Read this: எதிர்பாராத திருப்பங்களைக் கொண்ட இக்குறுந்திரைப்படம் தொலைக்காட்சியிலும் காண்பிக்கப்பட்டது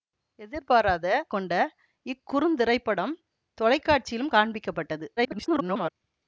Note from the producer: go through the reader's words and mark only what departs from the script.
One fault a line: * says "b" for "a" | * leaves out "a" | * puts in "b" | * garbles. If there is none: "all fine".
* leaves out "திருப்பங்களைக்"
* garbles